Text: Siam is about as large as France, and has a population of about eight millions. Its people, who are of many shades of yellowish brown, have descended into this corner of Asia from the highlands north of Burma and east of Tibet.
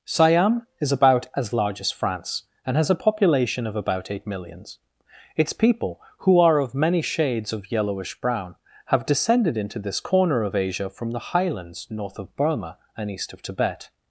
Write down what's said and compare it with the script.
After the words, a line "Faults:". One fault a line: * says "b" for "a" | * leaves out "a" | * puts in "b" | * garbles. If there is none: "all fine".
Siam is about as large as France, and has a population of about eight millions. Its people, who are of many shades of yellowish brown, have descended into this corner of Asia from the highlands north of Burma and east of Tibet.
Faults:
all fine